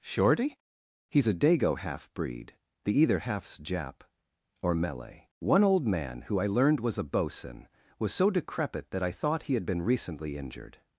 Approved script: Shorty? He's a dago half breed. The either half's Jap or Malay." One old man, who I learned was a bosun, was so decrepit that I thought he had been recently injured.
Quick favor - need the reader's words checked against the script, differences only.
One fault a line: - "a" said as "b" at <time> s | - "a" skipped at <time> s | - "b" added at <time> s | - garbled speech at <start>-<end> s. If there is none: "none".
none